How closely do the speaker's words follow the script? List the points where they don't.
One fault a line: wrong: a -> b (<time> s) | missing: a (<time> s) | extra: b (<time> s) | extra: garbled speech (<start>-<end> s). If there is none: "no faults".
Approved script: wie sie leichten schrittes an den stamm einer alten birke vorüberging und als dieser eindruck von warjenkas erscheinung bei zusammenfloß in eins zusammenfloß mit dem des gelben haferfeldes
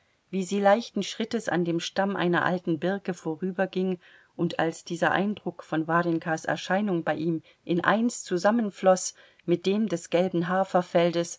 wrong: den -> dem (1.6 s)
wrong: zusammenfloß -> ihm (7.2 s)